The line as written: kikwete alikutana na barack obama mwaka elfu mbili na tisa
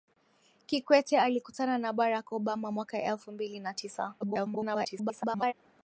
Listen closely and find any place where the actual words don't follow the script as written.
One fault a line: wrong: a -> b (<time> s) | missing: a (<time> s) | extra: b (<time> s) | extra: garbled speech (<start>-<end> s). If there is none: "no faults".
extra: garbled speech (4.2-5.5 s)